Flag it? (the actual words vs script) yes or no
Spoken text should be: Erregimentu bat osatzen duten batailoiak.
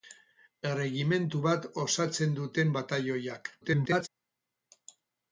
yes